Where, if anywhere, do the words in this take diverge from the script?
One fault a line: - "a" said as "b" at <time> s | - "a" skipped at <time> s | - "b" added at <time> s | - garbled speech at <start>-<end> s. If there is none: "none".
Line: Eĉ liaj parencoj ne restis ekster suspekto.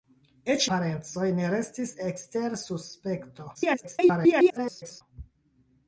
- "liaj" skipped at 0.6 s
- garbled speech at 3.5-5.0 s